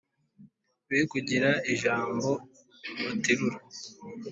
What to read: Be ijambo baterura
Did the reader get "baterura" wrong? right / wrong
right